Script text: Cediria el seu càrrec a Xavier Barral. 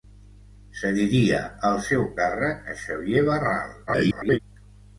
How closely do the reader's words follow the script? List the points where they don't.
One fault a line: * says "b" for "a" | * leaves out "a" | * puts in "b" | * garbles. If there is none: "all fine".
* garbles